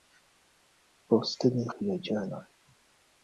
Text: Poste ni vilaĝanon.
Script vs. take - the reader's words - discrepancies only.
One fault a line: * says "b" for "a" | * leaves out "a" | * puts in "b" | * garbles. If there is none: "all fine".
all fine